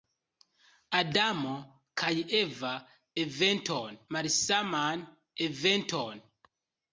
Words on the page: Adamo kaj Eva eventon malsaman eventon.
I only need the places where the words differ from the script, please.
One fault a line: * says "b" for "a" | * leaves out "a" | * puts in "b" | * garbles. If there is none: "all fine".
all fine